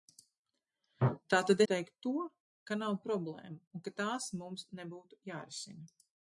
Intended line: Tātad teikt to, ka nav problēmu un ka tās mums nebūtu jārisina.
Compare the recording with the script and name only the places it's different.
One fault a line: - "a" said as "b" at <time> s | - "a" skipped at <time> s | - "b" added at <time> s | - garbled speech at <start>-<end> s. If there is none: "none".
none